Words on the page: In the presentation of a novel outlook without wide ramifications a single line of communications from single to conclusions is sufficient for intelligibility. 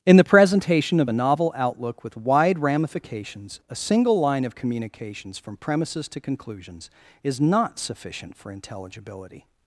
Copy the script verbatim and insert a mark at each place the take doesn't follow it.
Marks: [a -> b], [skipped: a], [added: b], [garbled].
In the presentation of a novel outlook [without -> with] wide ramifications a single line of communications from [single -> premises] to conclusions is [added: not] sufficient for intelligibility.